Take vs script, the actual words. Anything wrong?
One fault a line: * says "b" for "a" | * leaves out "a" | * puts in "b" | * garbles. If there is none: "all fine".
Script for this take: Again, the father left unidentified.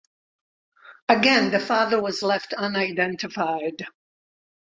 * puts in "was"